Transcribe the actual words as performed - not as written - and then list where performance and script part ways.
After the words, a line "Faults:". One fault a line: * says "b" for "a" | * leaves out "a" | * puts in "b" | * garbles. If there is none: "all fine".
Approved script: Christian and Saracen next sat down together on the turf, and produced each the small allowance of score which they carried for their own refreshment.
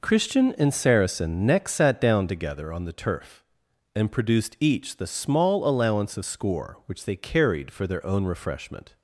Christian and Saracen next sat down together on the turf, and produced each the small allowance of score which they carried for their own refreshment.
Faults:
all fine